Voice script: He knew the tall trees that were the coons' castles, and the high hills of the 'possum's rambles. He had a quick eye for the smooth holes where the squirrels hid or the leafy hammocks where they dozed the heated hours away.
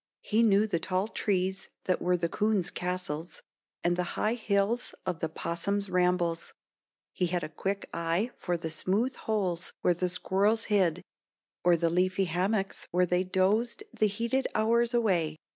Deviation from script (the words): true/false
false